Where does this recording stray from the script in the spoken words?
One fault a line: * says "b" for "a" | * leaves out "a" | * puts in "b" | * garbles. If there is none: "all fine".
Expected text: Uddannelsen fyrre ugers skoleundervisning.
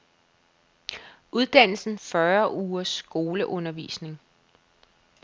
all fine